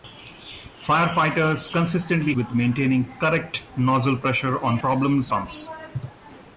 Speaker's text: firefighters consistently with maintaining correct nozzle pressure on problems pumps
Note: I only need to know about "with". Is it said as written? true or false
true